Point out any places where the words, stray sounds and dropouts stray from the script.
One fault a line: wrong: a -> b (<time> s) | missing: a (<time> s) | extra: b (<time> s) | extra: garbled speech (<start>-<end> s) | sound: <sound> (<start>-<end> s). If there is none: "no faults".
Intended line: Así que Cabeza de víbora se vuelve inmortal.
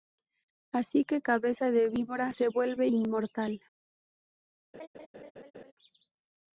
sound: laugh (4.7-5.7 s)